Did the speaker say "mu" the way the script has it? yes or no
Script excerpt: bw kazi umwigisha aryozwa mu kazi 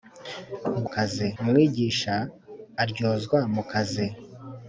yes